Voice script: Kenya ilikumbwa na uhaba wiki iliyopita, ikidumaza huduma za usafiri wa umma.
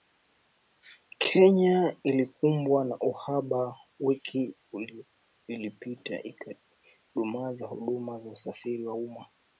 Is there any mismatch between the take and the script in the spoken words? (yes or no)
no